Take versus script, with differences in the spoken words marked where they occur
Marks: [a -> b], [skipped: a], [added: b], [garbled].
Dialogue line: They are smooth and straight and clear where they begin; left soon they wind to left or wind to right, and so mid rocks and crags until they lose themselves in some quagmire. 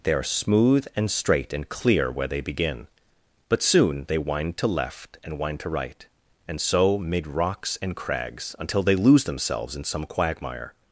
They are smooth and straight and clear where they begin; [left -> but] soon they wind to left [or -> and] wind to right, and so mid rocks and crags until they lose themselves in some quagmire.